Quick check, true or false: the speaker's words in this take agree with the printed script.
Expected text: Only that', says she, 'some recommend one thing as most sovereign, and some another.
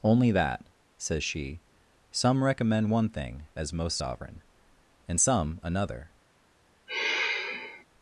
true